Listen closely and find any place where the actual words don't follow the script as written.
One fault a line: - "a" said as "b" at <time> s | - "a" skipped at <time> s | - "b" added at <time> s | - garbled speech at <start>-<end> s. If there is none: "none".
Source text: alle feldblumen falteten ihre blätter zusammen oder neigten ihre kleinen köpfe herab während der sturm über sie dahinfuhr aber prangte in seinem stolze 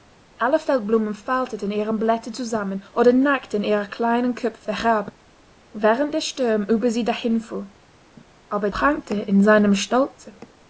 none